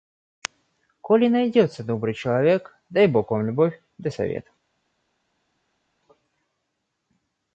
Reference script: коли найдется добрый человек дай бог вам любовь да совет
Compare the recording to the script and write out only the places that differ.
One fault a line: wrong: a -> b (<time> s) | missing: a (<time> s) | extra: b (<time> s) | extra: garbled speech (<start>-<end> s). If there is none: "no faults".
no faults